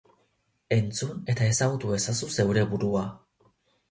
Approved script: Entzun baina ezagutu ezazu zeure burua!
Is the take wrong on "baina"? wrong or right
wrong